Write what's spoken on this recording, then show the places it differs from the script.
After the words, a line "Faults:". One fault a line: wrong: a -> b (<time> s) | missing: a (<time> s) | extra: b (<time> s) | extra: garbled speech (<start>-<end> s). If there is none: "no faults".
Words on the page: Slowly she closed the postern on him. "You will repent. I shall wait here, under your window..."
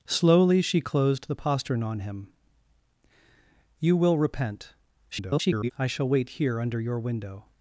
Slowly she closed the postern on him. "You will repent. [garbled] I shall wait here, under your window..."
Faults:
extra: garbled speech (5.1-5.7 s)